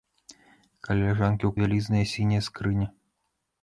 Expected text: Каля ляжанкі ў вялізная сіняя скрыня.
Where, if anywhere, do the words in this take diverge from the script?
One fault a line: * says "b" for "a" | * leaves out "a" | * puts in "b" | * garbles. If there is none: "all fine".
all fine